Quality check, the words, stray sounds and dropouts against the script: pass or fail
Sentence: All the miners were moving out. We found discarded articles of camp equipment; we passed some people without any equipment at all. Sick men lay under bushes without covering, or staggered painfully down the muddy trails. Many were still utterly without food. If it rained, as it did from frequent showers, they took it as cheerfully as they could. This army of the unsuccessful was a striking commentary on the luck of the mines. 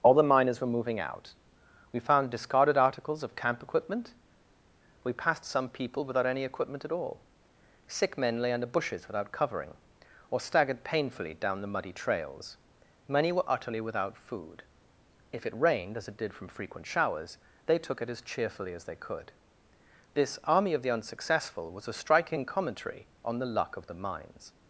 fail